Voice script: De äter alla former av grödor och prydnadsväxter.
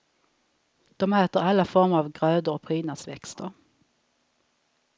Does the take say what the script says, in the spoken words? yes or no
yes